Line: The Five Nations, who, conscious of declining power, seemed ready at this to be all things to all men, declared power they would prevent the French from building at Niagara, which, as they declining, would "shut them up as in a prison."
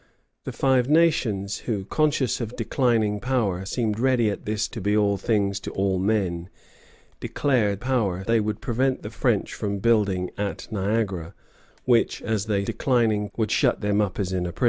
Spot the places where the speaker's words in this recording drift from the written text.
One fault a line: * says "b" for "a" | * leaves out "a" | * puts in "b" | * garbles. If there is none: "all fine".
all fine